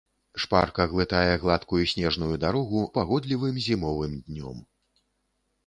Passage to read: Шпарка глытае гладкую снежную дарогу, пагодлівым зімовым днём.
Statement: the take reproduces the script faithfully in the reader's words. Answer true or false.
true